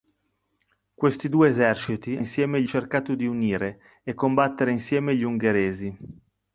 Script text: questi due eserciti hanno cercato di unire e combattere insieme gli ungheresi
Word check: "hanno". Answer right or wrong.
wrong